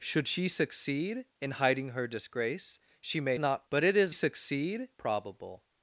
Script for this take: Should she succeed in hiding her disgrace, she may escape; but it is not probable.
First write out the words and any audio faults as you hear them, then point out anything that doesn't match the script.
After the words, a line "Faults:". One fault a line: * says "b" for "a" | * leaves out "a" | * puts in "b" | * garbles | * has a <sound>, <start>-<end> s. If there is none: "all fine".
Should she succeed in hiding her disgrace, she may not; but it is succeed probable.
Faults:
* says "not" for "escape"
* says "succeed" for "not"